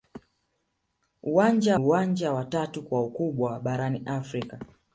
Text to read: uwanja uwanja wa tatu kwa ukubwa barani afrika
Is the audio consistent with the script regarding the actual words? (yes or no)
yes